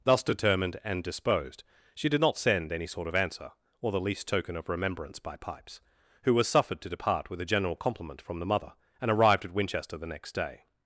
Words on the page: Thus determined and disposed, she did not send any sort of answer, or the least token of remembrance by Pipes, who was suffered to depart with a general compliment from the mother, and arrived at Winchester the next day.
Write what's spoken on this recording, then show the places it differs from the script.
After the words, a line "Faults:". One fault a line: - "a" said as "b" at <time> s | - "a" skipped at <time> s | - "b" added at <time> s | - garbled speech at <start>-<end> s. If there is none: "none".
Thus determined and disposed, she did not send any sort of answer, or the least token of remembrance by Pipes, who was suffered to depart with a general compliment from the mother, and arrived at Winchester the next day.
Faults:
none